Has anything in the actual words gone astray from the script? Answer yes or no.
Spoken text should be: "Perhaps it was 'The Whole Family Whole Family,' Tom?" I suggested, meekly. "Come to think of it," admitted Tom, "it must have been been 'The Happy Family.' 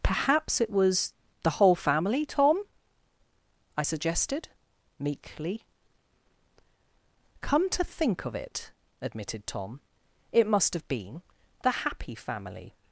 yes